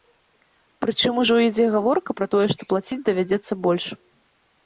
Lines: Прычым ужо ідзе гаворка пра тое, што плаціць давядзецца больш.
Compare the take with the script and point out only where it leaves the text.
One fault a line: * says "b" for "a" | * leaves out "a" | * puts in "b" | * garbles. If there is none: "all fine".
all fine